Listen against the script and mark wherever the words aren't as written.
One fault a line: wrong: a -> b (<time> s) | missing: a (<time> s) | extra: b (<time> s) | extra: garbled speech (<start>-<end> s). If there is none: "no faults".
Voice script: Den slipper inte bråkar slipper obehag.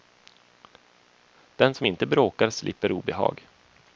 wrong: slipper -> som (1.7 s)